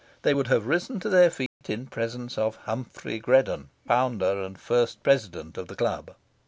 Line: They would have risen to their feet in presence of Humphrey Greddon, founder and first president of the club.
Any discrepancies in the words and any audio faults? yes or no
yes